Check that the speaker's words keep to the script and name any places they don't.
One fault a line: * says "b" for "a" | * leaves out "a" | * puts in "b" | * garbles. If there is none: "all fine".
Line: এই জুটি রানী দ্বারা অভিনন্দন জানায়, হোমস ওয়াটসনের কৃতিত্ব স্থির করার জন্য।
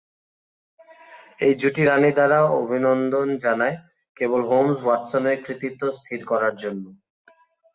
* puts in "কেবল"